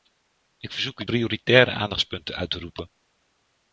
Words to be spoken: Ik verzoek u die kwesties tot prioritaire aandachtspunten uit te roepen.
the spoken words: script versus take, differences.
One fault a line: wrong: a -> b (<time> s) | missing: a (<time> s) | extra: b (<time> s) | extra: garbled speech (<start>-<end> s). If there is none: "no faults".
missing: die kwesties tot (1.1 s)